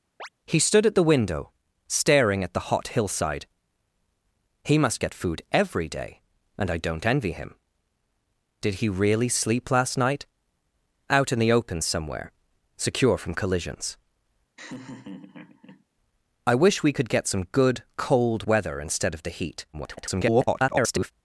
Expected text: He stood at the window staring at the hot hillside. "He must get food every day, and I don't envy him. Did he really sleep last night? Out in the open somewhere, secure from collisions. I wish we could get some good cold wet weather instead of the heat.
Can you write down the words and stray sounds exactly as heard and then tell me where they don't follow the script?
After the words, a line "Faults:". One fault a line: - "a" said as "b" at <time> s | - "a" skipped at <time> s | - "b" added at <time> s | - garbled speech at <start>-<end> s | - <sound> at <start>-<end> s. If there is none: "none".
He stood at the window staring at the hot hillside. "He must get food every day, and I don't envy him. Did he really sleep last night? Out in the open somewhere, secure from collisions. I wish we could get some good cold weather instead of the heat. [garbled]
Faults:
- chirp at 0.2-0.3 s
- laugh at 14.6-15.8 s
- "wet" skipped at 18.4 s
- garbled speech at 19.7-21.1 s